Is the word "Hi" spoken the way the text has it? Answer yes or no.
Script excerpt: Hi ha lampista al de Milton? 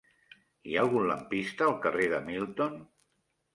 yes